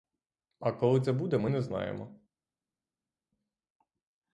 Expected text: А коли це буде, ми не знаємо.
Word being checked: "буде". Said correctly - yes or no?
yes